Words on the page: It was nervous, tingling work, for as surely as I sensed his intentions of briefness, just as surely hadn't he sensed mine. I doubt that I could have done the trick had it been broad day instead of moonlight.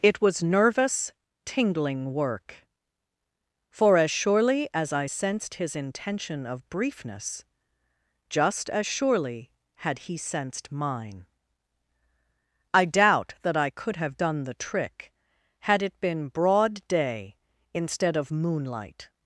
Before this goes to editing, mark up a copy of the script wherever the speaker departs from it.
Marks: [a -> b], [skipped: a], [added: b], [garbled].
It was nervous, tingling work, for as surely as I sensed his [intentions -> intention] of briefness, just as surely [hadn't -> had] he sensed mine. I doubt that I could have done the trick had it been broad day instead of moonlight.